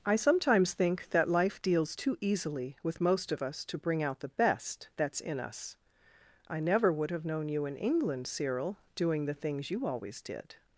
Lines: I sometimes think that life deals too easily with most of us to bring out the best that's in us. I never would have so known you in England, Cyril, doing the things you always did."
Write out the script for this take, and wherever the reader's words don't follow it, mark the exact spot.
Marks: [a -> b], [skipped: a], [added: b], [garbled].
I sometimes think that life deals too easily with most of us to bring out the best that's in us. I never would have [skipped: so] known you in England, Cyril, doing the things you always did."